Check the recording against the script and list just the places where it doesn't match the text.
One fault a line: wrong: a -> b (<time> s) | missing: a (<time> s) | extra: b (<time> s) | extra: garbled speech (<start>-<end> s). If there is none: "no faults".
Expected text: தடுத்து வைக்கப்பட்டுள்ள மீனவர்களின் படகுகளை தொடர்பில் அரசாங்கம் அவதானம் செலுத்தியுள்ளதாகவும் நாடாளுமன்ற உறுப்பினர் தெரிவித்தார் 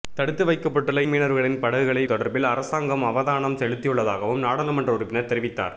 no faults